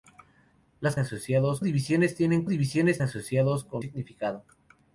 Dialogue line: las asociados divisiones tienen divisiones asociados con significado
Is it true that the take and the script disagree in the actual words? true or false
false